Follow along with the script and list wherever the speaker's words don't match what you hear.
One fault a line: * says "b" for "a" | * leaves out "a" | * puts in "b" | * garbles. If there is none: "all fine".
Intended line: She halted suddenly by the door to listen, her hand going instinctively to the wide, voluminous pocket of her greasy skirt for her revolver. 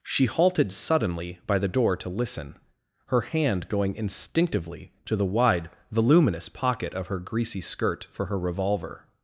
all fine